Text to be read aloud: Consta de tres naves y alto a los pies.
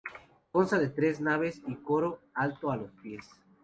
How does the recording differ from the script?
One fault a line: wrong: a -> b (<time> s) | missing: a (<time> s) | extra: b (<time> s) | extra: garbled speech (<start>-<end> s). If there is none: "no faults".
extra: coro (1.8 s)